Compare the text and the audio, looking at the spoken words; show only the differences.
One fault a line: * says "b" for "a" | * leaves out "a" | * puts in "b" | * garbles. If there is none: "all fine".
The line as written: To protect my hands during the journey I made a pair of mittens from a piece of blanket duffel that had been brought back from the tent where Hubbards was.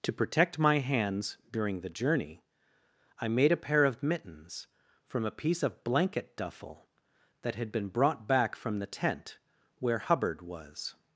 * says "Hubbard" for "Hubbards"